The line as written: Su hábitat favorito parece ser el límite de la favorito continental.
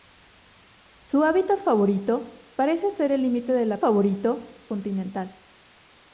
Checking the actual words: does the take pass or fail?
pass